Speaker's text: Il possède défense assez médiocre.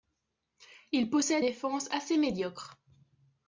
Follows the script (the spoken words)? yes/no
yes